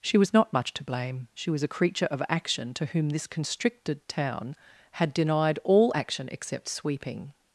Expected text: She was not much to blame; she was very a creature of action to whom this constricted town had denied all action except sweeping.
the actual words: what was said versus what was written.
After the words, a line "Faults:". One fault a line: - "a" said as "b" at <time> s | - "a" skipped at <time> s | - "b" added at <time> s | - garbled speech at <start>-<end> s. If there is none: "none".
She was not much to blame; she was a creature of action to whom this constricted town had denied all action except sweeping.
Faults:
- "very" skipped at 1.6 s